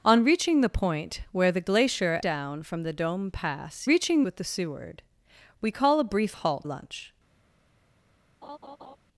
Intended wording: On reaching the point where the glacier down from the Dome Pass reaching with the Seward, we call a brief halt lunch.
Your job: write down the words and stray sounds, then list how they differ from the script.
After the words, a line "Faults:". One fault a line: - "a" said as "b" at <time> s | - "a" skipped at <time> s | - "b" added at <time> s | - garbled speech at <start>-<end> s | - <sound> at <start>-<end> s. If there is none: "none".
On reaching the point where the glacier down from the Dome Pass reaching with the Seward, we call a brief halt lunch.
Faults:
- laugh at 8.4-9.0 s